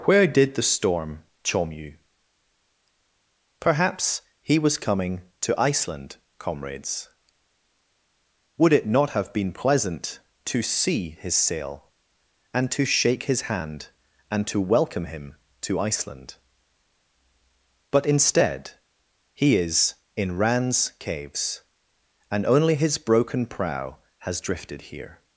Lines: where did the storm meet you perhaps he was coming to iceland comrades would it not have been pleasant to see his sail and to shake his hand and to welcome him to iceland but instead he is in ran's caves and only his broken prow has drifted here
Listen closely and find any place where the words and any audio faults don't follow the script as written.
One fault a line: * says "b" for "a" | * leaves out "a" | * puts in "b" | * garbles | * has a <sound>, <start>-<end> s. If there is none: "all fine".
* says "chom" for "meet"